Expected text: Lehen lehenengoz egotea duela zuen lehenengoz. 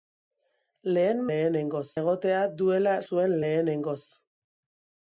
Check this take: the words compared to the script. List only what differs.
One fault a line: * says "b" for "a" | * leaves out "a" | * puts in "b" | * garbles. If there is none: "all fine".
all fine